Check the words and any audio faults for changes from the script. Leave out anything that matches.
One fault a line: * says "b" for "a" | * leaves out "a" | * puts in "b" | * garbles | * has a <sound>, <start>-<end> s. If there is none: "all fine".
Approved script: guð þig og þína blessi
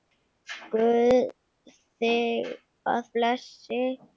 * leaves out "þína"